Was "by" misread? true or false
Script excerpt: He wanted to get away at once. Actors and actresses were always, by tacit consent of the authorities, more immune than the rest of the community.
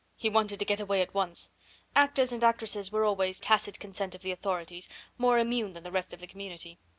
true